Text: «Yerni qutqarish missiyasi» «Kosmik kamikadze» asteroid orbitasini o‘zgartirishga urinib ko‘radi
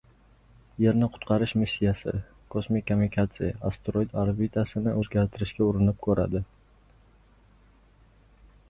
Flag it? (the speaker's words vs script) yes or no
no